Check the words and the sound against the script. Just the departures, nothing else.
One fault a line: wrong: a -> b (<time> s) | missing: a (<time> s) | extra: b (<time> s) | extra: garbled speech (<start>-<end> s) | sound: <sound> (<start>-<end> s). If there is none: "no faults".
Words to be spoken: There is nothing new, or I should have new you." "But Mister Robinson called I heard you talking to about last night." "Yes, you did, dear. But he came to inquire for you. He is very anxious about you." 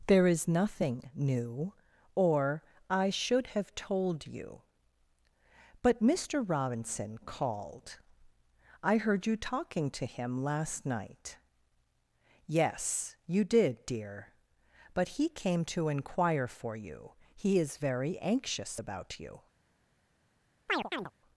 wrong: new -> told (3.8 s)
wrong: about -> him (10.1 s)
sound: chirp (20.7-21.1 s)